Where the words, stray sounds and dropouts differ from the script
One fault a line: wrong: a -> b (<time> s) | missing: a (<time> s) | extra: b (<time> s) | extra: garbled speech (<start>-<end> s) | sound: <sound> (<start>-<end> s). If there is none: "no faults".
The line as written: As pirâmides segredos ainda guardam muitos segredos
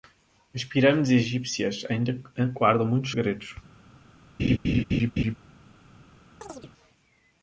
wrong: segredos -> egípcias (1.1 s)
sound: laugh (4.4-5.3 s)
sound: chirp (6.4-6.7 s)